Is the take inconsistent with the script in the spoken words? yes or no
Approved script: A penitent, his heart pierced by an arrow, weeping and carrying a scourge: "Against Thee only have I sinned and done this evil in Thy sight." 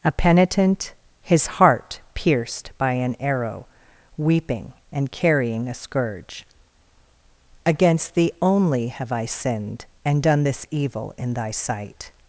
no